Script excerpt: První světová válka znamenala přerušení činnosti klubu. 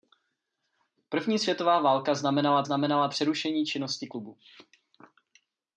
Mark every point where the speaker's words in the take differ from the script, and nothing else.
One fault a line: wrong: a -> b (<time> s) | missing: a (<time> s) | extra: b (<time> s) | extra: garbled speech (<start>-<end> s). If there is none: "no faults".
extra: znamenala (2.6 s)